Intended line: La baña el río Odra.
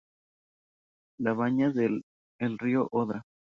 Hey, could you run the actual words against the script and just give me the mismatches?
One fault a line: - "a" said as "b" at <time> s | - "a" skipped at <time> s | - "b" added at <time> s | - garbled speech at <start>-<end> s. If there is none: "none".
none